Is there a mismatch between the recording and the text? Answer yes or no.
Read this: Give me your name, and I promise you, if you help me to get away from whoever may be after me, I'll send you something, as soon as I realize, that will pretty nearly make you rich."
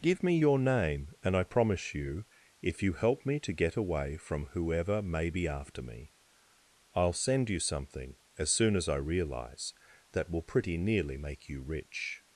no